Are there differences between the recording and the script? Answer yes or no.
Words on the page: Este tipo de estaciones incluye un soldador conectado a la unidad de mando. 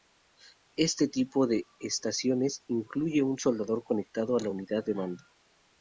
no